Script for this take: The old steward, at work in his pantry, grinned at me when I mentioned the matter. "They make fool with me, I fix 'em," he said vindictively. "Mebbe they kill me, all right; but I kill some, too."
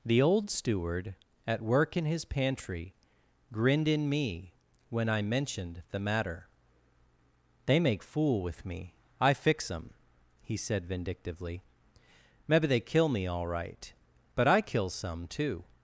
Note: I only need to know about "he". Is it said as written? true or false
true